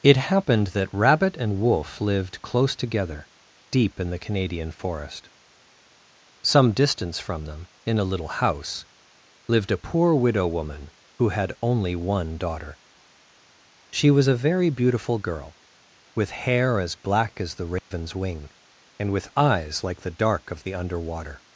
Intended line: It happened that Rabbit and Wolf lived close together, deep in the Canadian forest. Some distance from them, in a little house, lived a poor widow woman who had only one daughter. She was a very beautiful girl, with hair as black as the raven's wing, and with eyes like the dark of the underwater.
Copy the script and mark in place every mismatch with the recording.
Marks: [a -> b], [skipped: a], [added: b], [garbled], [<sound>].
It happened that Rabbit and Wolf lived close together, deep in the Canadian forest. Some distance from them, in a little house, lived a poor widow woman who had only one daughter. She was a very beautiful girl, with hair as black as the raven's [dropout] wing, and with eyes like the dark of the underwater.